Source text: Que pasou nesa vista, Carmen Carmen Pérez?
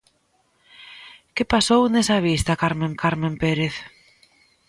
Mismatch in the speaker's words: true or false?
false